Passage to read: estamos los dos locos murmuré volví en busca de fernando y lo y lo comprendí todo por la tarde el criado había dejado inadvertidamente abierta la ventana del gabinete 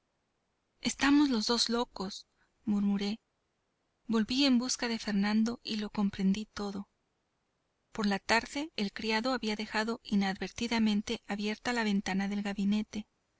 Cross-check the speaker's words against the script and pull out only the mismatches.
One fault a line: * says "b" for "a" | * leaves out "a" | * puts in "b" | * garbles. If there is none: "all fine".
* leaves out "y lo"